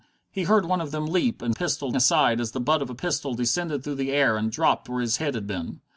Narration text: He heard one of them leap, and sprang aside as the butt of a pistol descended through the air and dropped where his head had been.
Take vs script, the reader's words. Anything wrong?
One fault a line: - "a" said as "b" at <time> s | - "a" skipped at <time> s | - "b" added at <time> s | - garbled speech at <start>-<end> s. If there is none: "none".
- "sprang" said as "pistol" at 1.5 s